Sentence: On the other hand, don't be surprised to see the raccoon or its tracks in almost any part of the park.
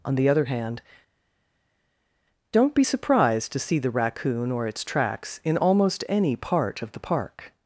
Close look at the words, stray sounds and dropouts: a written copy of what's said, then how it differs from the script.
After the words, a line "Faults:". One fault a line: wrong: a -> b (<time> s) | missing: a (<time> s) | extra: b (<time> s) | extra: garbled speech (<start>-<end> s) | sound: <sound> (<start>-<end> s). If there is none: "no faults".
On the other hand, don't be surprised to see the raccoon or its tracks in almost any part of the park.
Faults:
no faults